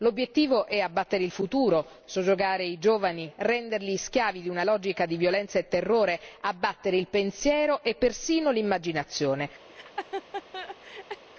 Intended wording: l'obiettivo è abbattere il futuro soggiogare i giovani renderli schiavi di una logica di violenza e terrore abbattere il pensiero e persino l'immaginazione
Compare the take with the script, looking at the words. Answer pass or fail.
pass